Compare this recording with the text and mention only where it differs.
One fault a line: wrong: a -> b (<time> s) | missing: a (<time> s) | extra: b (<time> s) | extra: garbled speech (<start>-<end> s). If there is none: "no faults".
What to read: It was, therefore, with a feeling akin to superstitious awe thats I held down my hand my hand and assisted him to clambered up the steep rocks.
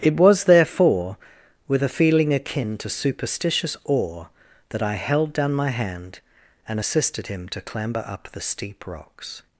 wrong: thats -> that (4.7 s)
missing: my hand (6.2 s)
wrong: clambered -> clamber (7.6 s)